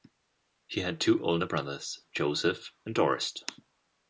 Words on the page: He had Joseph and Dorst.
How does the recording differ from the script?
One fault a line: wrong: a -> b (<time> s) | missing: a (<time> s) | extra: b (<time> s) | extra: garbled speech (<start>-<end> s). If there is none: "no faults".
extra: two older brothers (1.0 s)